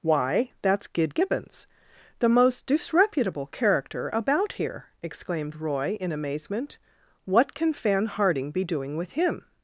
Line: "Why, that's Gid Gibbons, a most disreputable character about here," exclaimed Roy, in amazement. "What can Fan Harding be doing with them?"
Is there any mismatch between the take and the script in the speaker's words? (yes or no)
yes